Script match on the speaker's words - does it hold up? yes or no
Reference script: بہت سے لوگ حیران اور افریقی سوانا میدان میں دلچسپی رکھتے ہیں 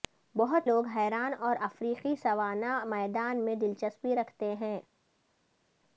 no